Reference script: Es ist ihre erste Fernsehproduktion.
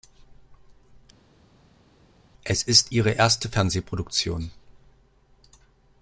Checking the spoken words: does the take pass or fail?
pass